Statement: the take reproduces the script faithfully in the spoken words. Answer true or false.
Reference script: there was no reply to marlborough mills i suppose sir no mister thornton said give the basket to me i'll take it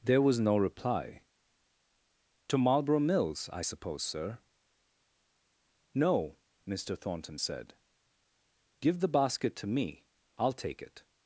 true